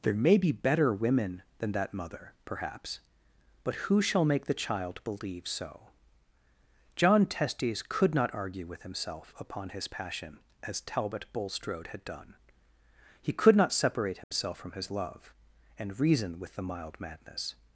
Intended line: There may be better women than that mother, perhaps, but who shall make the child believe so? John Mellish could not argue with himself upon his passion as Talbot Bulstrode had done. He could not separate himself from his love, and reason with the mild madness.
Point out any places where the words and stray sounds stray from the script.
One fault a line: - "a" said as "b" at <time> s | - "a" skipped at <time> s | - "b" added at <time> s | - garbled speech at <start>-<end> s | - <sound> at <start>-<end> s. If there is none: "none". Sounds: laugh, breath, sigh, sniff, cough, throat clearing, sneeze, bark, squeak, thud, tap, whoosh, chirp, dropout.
- "Mellish" said as "Testes" at 7.3 s
- dropout at 14.2-14.3 s